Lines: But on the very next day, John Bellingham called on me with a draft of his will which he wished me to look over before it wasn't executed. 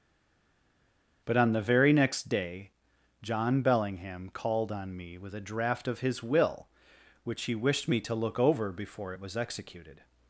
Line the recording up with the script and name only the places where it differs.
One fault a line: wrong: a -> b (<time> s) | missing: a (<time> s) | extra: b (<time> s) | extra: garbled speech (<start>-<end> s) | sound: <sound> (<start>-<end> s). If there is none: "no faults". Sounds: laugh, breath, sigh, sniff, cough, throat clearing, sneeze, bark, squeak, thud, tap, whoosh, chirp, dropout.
wrong: wasn't -> was (9.2 s)